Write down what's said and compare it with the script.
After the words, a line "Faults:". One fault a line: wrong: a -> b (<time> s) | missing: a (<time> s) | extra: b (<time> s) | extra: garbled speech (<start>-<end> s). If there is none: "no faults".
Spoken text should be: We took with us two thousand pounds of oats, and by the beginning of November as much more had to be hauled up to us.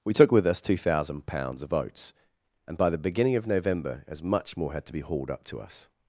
We took with us two thousand pounds of oats, and by the beginning of November as much more had to be hauled up to us.
Faults:
no faults